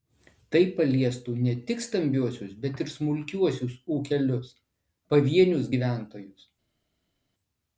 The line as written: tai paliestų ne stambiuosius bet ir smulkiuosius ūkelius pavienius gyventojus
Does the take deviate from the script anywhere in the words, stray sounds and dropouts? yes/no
yes